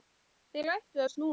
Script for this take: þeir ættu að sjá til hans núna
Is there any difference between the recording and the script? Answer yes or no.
yes